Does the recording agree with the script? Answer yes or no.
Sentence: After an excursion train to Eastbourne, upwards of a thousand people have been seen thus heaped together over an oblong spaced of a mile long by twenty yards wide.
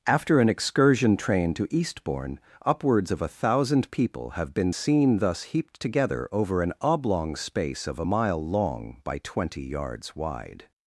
no